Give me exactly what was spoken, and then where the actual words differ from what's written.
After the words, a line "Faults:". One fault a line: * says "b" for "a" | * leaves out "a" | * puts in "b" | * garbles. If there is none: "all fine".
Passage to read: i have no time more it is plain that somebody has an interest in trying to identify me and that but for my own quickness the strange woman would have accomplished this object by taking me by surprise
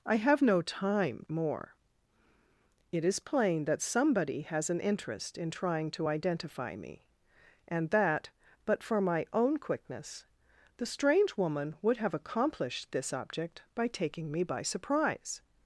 i have no time more it is plain that somebody has an interest in trying to identify me and that but for my own quickness the strange woman would have accomplished this object by taking me by surprise
Faults:
all fine